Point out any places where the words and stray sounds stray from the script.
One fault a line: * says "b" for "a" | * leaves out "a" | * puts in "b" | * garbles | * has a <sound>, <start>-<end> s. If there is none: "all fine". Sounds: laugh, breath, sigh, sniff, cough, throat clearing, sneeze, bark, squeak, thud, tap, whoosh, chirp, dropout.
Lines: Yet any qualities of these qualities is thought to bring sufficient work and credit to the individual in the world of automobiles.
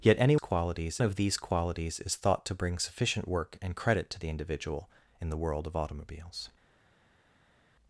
all fine